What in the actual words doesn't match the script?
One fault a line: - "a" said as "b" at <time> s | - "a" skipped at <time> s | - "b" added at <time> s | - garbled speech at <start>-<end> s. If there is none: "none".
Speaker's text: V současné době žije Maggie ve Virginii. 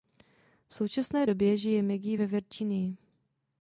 none